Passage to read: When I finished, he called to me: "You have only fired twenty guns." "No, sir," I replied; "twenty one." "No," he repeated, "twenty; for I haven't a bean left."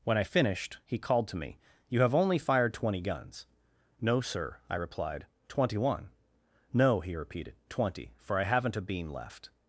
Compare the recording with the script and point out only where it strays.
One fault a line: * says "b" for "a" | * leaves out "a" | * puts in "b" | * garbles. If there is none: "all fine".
all fine